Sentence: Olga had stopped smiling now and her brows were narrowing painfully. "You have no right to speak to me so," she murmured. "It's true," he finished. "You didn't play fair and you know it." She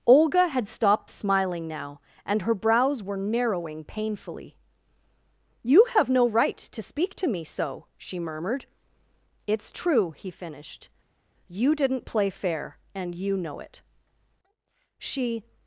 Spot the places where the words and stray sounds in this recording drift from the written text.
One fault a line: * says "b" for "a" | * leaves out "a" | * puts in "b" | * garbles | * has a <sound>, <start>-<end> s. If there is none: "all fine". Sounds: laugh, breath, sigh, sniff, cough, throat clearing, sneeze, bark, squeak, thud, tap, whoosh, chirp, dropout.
all fine